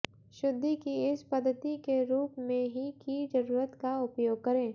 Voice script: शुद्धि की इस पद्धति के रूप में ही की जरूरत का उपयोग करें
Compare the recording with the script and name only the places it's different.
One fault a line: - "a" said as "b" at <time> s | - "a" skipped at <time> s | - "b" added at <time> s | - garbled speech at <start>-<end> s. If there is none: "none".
none